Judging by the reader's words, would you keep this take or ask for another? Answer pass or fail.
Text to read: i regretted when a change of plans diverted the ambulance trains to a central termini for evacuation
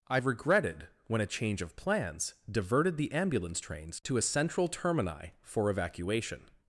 pass